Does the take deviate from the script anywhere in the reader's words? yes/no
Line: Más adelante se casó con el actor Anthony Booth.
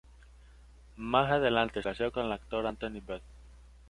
yes